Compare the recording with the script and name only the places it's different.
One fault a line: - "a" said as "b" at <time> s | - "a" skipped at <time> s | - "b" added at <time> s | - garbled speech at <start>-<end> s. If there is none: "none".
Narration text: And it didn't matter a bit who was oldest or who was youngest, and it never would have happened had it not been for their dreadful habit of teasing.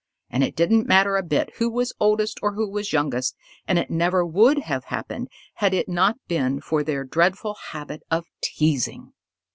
none